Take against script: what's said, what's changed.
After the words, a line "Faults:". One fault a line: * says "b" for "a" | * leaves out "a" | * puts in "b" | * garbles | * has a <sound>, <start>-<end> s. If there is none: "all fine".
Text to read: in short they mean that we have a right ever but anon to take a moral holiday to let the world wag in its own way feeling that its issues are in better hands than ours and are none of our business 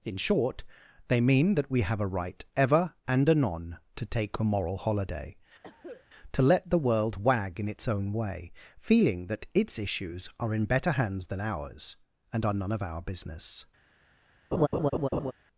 in short they mean that we have a right ever and anon to take a moral holiday to let the world wag in its own way feeling that its issues are in better hands than ours and are none of our business
Faults:
* says "and" for "but"
* has a cough, 5.6-6.1 s
* has a laugh, 14.5-15.3 s